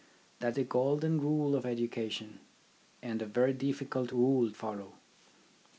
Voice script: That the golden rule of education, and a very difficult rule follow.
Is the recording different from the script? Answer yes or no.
no